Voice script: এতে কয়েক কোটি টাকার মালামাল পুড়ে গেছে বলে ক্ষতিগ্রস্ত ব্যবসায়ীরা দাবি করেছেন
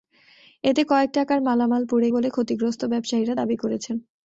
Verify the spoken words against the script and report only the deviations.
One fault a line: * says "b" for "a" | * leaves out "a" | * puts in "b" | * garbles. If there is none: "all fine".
* leaves out "কোটি"
* leaves out "গেছে"